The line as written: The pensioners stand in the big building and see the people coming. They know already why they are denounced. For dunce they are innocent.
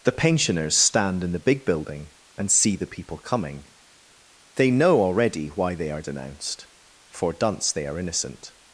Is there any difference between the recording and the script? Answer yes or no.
no